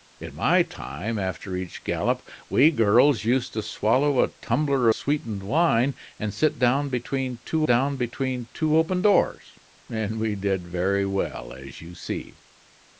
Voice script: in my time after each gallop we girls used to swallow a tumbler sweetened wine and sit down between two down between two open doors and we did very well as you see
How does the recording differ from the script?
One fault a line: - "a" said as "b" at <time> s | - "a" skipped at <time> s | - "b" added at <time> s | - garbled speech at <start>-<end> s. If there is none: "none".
none